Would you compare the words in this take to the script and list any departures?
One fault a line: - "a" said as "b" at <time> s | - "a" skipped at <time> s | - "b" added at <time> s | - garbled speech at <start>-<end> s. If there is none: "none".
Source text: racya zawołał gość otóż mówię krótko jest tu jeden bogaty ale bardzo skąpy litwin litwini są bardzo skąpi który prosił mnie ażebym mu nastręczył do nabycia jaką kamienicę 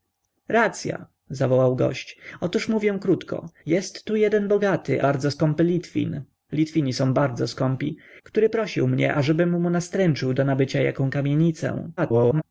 - "ale" skipped at 5.0 s
- garbled speech at 12.0-12.4 s